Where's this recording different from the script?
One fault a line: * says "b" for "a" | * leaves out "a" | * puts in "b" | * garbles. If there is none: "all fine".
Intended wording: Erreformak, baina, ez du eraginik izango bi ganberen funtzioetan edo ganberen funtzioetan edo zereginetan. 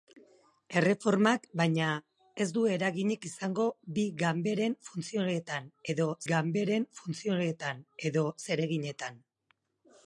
all fine